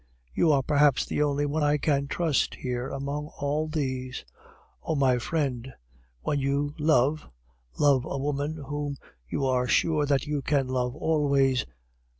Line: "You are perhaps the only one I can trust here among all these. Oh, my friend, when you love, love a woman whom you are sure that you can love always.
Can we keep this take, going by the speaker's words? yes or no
yes